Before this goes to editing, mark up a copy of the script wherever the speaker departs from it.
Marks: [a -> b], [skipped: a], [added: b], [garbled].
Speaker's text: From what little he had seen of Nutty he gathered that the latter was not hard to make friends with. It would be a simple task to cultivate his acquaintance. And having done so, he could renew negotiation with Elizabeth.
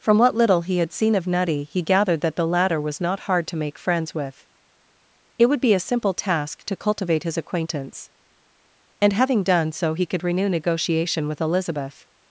From what little he had seen of Nutty he gathered that the latter was not hard to make friends with. It would be a simple task to cultivate his acquaintance. And having done so, he could renew negotiation with Elizabeth.